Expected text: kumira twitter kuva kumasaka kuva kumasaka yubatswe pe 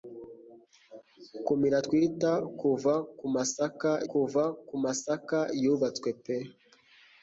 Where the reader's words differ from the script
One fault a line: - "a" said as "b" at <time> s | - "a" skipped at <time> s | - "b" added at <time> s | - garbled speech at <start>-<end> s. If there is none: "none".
none